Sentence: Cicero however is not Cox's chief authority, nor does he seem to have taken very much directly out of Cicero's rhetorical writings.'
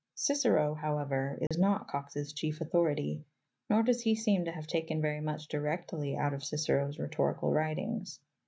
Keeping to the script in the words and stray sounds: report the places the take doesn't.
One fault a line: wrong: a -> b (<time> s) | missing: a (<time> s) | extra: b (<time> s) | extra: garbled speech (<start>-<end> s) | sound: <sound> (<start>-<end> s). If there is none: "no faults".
sound: dropout (1.5-1.5 s)